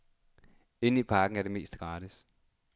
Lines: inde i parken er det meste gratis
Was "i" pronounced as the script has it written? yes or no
yes